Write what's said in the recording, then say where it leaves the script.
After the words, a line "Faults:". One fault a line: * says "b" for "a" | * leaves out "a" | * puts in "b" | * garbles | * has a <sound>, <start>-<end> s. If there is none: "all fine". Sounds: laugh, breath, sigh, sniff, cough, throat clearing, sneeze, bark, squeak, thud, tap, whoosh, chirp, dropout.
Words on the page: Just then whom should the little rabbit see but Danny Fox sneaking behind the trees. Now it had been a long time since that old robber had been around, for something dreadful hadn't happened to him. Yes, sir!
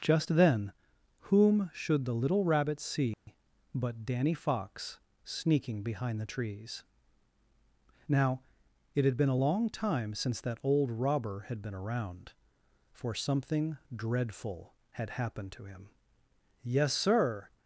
Just then whom should the little rabbit see but Danny Fox sneaking behind the trees. Now it had been a long time since that old robber had been around, for something dreadful had happened to him. Yes, sir!
Faults:
* has a dropout, 3.1-3.3 s
* says "had" for "hadn't"